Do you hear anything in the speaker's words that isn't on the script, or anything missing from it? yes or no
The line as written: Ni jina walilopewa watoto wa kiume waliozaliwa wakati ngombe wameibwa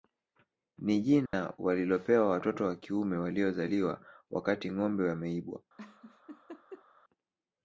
no